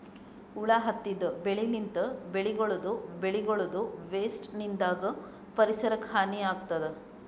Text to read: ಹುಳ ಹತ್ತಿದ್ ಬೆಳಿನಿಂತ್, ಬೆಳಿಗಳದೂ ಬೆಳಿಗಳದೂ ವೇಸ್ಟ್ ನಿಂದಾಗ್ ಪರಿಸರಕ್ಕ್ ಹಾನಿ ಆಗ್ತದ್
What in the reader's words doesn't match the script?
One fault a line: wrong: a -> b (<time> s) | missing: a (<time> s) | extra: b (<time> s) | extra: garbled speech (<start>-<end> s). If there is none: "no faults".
no faults